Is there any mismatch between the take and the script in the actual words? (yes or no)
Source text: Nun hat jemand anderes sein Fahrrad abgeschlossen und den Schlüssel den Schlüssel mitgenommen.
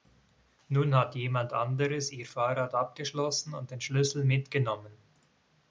yes